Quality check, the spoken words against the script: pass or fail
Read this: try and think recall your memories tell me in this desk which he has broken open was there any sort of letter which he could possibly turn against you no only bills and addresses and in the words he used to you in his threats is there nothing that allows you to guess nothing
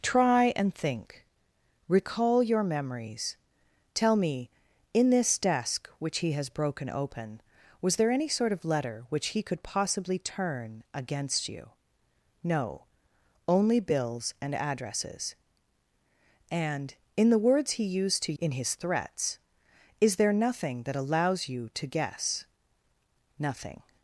fail